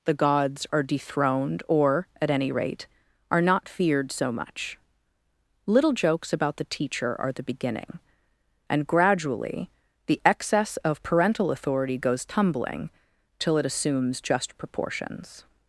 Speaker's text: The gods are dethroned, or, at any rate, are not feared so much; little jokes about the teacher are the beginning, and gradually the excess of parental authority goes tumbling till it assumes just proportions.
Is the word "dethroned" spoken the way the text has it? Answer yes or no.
yes